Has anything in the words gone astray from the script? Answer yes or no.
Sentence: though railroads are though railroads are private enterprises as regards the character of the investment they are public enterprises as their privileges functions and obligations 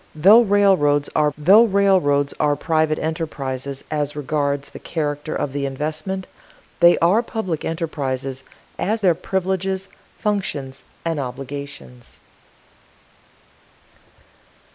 no